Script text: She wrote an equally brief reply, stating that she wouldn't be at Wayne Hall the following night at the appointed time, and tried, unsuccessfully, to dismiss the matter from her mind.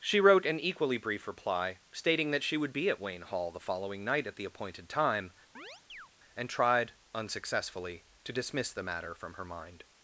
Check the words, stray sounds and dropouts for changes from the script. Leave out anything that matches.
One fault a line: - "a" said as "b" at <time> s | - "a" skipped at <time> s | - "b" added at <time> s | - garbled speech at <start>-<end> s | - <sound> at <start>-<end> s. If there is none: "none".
- "wouldn't" said as "would" at 2.6 s
- chirp at 5.5-6.1 s